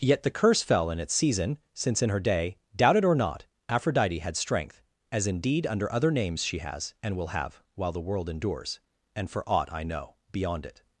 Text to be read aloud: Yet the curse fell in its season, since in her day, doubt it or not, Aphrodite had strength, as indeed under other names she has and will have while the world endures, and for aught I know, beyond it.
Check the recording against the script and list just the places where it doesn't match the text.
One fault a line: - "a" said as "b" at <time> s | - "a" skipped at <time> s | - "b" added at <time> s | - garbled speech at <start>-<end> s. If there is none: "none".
none